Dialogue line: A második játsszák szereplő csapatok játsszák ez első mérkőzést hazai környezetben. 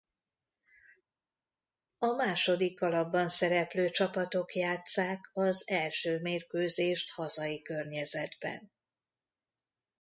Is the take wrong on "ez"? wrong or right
wrong